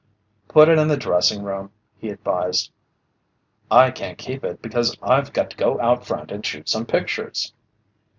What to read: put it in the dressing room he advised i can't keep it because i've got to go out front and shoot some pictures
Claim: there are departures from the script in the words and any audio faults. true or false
false